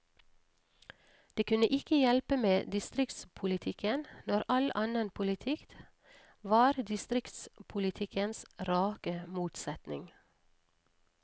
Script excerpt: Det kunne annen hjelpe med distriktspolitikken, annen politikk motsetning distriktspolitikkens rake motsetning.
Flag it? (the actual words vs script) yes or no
yes